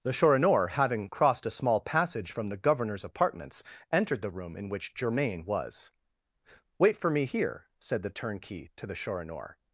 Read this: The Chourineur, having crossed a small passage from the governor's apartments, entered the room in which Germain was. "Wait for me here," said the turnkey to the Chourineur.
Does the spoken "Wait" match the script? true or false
true